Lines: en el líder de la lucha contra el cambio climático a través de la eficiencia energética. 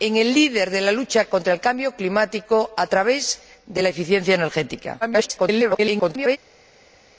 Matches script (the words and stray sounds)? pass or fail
fail